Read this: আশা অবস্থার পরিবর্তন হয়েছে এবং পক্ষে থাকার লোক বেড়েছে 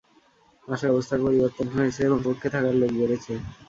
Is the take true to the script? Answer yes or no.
yes